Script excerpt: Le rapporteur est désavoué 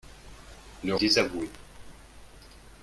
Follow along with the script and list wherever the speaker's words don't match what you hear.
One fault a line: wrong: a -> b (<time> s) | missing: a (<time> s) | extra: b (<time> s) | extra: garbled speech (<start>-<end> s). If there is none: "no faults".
missing: rapporteur est (0.9 s)